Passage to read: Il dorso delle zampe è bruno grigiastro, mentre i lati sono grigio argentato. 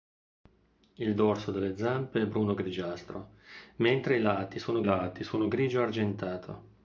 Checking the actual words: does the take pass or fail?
fail